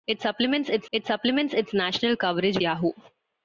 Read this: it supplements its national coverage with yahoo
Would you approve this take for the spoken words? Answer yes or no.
no